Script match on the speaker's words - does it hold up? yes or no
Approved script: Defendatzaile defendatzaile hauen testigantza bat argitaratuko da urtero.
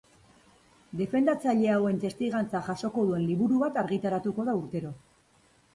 no